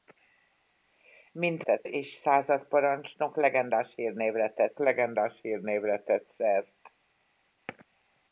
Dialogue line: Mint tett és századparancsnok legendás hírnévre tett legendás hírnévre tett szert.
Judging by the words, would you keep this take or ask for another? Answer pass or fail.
pass